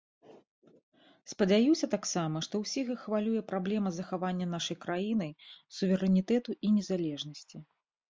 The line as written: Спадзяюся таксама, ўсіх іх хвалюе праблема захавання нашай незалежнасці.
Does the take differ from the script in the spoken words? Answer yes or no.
yes